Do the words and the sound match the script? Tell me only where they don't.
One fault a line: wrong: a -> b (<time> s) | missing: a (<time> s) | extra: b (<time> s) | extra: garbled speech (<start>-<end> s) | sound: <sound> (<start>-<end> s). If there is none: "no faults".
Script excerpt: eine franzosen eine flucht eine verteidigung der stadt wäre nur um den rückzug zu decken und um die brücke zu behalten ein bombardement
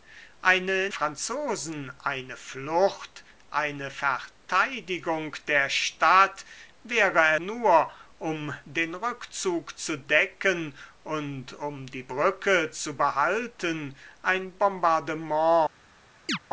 sound: chirp (16.3-16.4 s)